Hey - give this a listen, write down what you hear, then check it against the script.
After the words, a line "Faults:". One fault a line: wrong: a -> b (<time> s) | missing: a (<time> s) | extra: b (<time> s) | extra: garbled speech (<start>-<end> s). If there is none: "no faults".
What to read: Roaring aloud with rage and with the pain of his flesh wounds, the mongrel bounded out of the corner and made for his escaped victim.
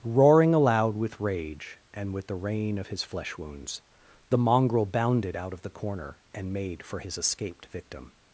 Roaring aloud with rage and with the rain of his flesh wounds, the mongrel bounded out of the corner and made for his escaped victim.
Faults:
wrong: pain -> rain (2.4 s)